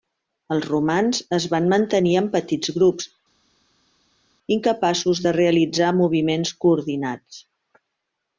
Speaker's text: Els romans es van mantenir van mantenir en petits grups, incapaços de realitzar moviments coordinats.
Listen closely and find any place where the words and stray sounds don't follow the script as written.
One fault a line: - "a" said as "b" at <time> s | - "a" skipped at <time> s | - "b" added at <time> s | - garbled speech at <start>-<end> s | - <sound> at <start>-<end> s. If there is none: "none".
- "van mantenir" skipped at 2.1 s